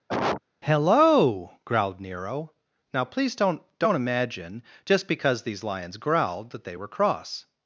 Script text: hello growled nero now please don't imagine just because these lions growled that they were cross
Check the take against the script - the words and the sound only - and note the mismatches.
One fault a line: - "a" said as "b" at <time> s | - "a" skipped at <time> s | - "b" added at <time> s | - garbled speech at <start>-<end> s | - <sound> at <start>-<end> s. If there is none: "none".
- cough at 0.1-0.4 s
- "don't" added at 3.8 s